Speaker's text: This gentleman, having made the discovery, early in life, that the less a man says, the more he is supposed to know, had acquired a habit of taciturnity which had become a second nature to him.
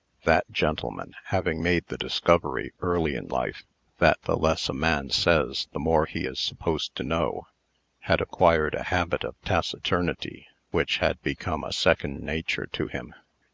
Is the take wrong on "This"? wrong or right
wrong